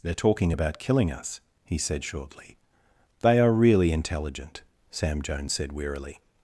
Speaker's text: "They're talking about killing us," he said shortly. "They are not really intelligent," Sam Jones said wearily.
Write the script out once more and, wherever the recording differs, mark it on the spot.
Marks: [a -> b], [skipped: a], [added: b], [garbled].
"They're talking about killing us," he said shortly. "They are [skipped: not] really intelligent," Sam Jones said wearily.